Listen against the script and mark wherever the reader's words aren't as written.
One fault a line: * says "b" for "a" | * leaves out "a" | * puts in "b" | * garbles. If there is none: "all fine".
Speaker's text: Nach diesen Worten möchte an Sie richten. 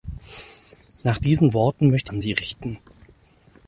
all fine